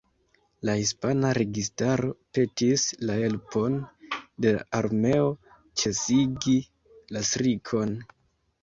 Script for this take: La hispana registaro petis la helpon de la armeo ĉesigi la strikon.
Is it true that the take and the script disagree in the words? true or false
false